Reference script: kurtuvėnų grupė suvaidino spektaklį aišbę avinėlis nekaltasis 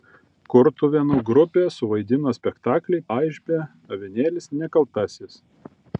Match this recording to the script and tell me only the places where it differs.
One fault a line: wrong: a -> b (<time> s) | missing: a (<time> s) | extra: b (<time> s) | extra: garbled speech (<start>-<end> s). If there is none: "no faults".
no faults